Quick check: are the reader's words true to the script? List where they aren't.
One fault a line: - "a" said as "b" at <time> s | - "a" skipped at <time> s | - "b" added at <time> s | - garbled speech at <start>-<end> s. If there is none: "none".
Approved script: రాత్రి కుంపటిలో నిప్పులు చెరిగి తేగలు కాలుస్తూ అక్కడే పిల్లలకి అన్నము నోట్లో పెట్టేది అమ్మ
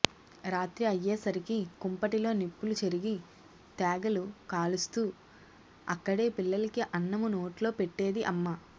- "అయ్యేసరికి" added at 0.8 s